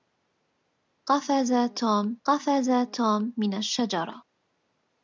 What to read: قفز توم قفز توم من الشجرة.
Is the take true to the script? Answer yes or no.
yes